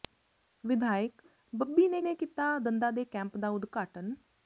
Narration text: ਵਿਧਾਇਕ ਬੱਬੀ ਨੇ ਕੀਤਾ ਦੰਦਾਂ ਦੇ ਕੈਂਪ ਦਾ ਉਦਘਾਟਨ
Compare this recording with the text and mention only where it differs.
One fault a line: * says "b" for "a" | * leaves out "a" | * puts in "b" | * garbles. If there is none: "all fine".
* puts in "ਨੇ"